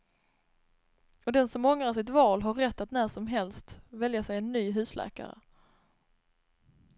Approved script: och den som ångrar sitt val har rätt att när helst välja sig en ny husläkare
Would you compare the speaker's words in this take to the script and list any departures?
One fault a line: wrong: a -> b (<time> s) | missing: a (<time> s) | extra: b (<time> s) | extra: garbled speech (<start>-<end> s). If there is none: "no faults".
extra: som (3.1 s)